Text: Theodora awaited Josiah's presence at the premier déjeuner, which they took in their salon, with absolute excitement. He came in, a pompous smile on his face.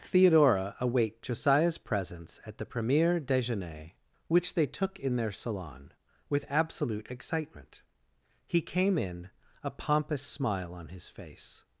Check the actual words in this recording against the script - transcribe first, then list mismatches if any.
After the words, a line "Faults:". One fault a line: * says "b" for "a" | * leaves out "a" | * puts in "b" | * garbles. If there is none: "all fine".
Theodora await Josiah's presence at the premier déjeuner, which they took in their salon, with absolute excitement. He came in, a pompous smile on his face.
Faults:
* says "await" for "awaited"